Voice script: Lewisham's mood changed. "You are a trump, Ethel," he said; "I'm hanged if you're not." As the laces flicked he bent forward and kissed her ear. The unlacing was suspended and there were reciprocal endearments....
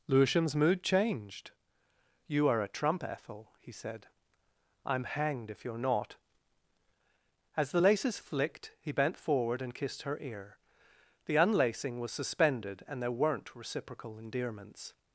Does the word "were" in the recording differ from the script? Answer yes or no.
yes